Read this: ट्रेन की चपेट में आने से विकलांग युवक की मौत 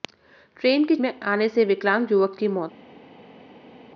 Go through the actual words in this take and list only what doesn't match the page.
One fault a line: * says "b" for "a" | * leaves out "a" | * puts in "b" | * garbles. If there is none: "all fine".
* leaves out "चपेट"